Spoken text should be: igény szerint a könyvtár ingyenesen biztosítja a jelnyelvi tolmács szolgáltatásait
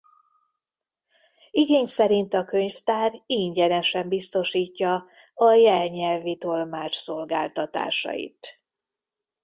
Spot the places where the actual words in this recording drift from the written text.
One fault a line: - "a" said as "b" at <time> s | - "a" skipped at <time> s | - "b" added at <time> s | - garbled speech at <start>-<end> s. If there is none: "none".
none